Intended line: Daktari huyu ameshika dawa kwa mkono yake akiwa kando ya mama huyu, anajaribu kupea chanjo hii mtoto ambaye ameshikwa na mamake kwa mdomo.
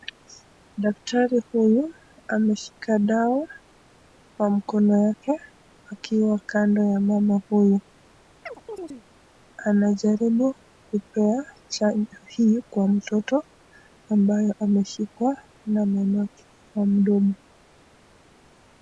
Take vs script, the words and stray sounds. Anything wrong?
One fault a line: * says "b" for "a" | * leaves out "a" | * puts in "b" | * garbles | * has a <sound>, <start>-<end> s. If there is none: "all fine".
* has a chirp, 8.4-9.0 s
* puts in "kwa"